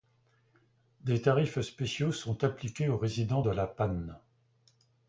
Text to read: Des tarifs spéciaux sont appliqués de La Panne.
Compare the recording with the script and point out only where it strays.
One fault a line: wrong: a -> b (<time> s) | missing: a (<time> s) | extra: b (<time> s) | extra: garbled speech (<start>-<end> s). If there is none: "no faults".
extra: aux résidents (2.9 s)